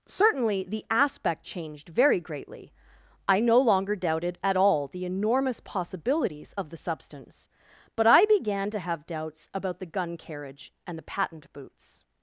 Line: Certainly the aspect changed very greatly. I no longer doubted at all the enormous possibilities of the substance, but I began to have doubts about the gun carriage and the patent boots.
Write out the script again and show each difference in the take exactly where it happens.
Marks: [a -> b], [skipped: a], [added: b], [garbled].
Certainly the aspect changed very greatly. I no longer doubted at all the enormous possibilities of the substance, but I began to have doubts about the gun carriage and the patent boots.